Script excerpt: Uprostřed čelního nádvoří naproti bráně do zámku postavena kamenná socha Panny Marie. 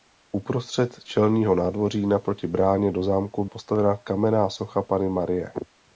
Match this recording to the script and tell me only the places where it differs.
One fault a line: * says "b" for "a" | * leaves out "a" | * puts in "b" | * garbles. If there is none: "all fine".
all fine